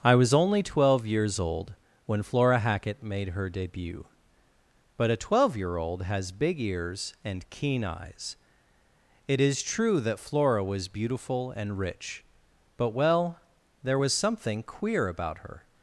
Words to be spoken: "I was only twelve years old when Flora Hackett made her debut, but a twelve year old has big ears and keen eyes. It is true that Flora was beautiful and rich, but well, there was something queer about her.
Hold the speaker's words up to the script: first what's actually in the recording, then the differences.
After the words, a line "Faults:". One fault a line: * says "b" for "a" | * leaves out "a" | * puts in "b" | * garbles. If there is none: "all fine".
"I was only twelve years old when Flora Hackett made her debut, but a twelve year old has big ears and keen eyes. It is true that Flora was beautiful and rich, but well, there was something queer about her.
Faults:
all fine